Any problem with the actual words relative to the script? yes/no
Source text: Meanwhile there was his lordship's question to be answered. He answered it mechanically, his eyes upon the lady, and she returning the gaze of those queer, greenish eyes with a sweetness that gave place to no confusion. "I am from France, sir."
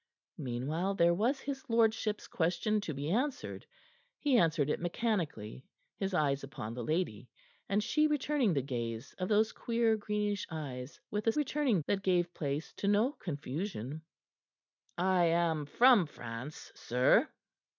yes